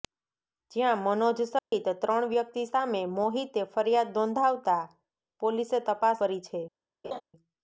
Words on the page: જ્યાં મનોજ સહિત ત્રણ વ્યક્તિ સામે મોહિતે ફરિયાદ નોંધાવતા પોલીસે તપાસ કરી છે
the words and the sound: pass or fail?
fail